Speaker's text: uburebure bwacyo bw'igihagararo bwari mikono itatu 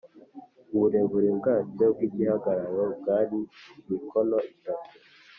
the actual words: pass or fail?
pass